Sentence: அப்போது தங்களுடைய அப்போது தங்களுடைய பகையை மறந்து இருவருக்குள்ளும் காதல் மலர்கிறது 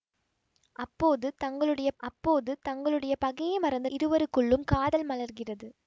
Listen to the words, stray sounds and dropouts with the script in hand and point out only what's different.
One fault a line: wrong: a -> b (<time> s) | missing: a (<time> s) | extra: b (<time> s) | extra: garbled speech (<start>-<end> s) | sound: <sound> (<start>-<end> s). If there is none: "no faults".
no faults